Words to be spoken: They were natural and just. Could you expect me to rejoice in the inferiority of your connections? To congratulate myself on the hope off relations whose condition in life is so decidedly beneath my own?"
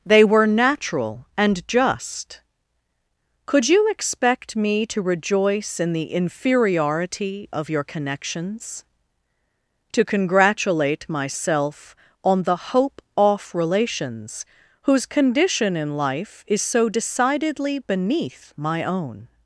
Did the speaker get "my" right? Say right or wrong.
right